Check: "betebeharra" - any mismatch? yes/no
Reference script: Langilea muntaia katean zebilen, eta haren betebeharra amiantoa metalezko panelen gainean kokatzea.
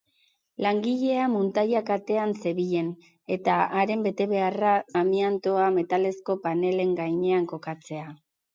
no